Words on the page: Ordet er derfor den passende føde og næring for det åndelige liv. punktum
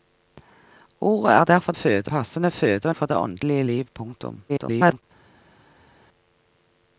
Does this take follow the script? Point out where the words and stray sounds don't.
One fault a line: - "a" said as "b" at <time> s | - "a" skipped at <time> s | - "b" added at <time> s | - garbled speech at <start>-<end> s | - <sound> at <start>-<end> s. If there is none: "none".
- "den" said as "føde" at 1.7 s
- "næring" skipped at 3.0 s
- garbled speech at 4.5-5.0 s